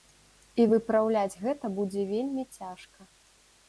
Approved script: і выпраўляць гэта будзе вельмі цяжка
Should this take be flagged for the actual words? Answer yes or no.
no